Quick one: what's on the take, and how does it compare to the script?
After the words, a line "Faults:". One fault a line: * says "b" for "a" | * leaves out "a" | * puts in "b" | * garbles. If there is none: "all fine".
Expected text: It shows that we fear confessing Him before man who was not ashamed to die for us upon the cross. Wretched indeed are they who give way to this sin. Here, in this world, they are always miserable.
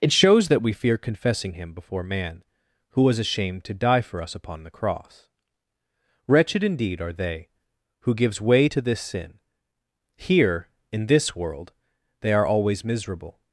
It shows that we fear confessing Him before man who was ashamed to die for us upon the cross. Wretched indeed are they who gives way to this sin. Here, in this world, they are always miserable.
Faults:
* leaves out "not"
* says "gives" for "give"